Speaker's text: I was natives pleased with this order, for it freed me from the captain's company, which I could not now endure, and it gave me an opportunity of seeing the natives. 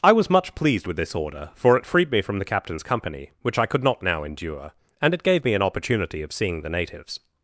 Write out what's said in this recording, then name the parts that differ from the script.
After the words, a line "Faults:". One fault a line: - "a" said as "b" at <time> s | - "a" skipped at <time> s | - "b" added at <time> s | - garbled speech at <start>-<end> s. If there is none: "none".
I was much pleased with this order, for it freed me from the captain's company, which I could not now endure, and it gave me an opportunity of seeing the natives.
Faults:
- "natives" said as "much" at 0.3 s